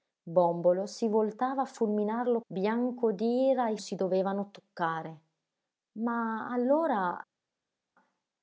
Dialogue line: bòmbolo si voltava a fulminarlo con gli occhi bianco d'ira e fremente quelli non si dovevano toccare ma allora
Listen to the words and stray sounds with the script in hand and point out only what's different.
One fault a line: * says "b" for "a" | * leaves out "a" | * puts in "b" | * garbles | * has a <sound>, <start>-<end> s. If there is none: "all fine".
* leaves out "con gli occhi"
* leaves out "fremente quelli non"